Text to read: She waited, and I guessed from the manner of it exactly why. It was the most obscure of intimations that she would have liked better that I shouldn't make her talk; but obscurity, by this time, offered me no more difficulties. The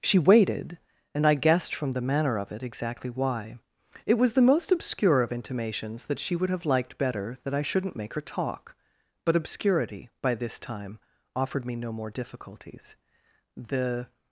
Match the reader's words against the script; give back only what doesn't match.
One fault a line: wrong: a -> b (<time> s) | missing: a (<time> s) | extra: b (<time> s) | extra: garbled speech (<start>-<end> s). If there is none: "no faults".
no faults